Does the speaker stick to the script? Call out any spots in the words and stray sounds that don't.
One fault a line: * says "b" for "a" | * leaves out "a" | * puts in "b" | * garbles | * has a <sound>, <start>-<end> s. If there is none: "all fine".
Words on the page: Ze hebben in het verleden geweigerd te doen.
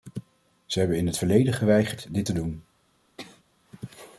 * puts in "dit"
* has a sneeze, 3.2-3.4 s